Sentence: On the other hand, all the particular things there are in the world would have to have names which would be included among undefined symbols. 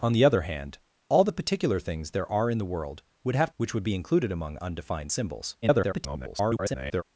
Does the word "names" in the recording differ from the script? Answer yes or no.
yes